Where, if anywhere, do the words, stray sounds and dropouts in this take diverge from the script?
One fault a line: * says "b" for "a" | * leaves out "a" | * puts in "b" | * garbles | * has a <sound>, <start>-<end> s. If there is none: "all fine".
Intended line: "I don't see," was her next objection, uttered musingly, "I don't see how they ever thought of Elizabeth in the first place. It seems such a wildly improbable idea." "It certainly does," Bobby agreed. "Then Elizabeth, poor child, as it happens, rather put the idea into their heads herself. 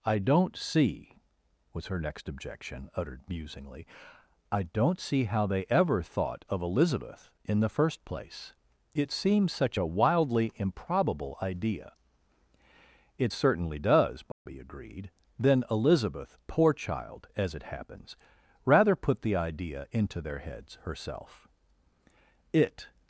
* has a dropout, 14.3-14.5 s
* puts in "It"